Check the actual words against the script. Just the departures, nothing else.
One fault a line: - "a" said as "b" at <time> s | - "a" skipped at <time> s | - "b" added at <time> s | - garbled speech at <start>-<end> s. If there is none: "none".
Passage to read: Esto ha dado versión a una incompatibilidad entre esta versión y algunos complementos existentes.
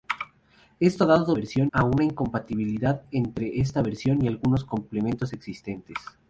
none